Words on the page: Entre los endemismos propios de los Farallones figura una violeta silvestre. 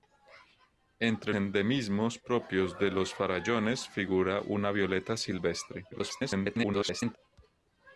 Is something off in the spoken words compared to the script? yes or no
yes